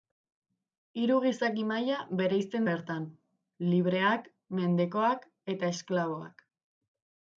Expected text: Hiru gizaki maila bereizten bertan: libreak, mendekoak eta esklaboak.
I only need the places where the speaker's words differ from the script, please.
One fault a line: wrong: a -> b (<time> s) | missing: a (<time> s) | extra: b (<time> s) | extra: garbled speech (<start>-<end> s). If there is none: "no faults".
no faults